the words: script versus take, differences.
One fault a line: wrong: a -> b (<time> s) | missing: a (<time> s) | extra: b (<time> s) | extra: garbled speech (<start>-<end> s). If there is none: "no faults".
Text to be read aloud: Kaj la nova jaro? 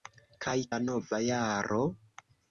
no faults